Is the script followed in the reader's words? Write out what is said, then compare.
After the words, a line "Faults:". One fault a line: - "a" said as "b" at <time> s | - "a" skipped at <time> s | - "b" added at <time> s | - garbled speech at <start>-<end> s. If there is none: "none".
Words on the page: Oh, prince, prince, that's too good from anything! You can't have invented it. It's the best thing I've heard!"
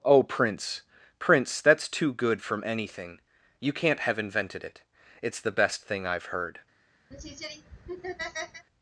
Oh, prince, prince, that's too good from anything! You can't have invented it. It's the best thing I've heard!"
Faults:
none